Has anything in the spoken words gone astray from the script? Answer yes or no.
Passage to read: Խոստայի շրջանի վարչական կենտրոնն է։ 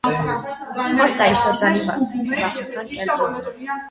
no